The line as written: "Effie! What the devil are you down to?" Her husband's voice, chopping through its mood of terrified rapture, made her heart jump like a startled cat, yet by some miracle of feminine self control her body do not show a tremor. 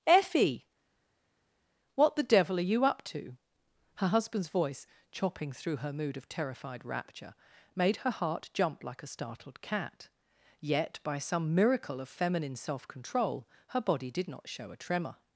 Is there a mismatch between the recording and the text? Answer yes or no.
yes